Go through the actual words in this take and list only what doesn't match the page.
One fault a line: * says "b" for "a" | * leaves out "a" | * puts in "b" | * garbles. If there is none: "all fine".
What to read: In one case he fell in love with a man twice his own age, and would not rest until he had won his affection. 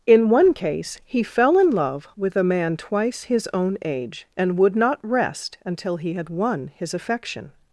all fine